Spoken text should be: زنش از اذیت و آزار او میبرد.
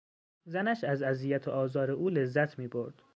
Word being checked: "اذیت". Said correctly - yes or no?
yes